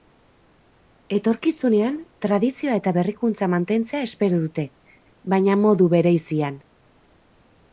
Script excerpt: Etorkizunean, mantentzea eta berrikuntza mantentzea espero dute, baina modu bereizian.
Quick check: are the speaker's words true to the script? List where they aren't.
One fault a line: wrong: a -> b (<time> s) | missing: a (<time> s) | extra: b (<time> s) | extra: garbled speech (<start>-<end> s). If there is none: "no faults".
wrong: mantentzea -> tradizioa (2.2 s)